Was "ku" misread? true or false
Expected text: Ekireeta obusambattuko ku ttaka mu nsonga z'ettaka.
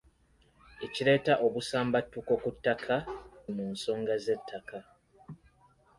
false